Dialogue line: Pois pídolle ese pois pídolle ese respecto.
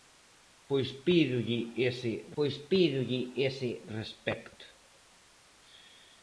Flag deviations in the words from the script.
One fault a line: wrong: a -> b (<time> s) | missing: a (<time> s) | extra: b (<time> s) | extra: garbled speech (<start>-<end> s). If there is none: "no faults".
no faults